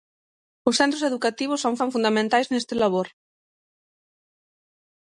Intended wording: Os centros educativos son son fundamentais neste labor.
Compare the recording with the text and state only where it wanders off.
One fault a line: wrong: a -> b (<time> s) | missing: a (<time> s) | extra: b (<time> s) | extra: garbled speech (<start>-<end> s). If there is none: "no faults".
no faults